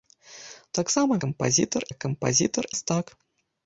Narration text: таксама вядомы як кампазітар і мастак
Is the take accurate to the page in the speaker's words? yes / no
no